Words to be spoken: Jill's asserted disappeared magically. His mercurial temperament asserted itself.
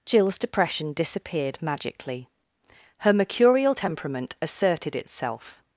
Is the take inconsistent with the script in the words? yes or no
yes